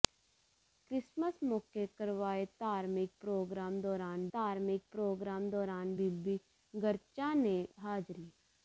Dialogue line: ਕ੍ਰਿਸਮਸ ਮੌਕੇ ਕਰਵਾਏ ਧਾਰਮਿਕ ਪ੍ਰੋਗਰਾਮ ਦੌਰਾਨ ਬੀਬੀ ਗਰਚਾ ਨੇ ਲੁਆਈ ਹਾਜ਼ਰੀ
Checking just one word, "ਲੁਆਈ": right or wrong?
wrong